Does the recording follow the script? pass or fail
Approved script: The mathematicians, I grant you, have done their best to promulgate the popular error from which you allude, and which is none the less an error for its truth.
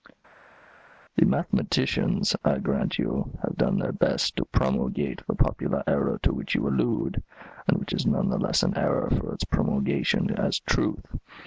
fail